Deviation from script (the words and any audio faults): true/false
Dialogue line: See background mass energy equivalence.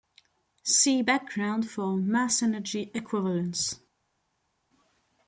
true